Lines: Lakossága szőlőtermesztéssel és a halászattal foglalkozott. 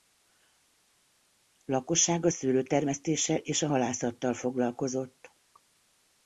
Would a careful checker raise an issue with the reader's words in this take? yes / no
no